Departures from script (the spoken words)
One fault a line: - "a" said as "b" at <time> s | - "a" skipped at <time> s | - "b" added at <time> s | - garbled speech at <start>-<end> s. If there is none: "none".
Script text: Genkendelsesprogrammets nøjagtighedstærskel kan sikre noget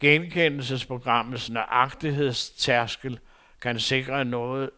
none